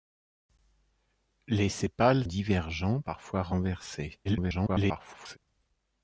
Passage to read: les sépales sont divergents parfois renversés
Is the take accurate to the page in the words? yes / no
no